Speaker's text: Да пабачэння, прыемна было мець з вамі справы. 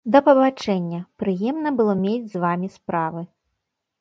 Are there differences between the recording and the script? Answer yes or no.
no